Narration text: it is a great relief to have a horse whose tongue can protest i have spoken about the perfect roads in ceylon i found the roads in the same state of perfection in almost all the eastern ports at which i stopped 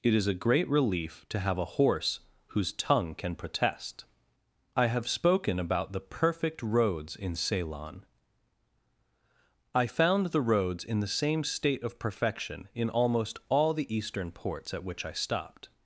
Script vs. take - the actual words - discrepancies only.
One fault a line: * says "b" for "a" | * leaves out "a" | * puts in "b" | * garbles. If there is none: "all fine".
all fine